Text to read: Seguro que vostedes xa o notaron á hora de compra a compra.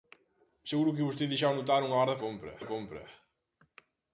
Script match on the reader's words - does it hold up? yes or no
yes